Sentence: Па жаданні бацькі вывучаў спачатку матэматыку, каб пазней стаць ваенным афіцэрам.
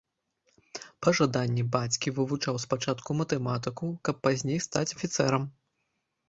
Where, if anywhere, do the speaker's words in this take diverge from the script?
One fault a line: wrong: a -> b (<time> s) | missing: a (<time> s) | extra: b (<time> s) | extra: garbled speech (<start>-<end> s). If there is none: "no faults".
missing: ваенным (5.0 s)